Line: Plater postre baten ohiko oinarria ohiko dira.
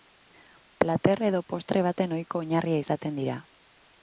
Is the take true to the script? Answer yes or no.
no